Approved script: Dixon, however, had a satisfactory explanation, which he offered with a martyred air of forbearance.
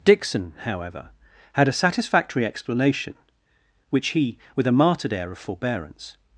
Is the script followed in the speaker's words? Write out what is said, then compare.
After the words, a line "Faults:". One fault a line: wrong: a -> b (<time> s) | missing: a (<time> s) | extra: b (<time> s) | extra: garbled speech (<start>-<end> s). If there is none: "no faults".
Dixon, however, had a satisfactory explanation, which he with a martyred air of forbearance.
Faults:
missing: offered (4.4 s)